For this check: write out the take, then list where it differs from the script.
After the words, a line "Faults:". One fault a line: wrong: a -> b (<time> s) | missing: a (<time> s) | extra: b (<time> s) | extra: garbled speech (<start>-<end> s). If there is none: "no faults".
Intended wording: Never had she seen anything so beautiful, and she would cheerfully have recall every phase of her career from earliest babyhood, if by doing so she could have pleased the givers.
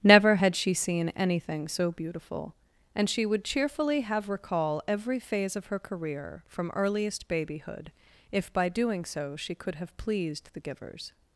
Never had she seen anything so beautiful, and she would cheerfully have recall every phase of her career from earliest babyhood, if by doing so she could have pleased the givers.
Faults:
no faults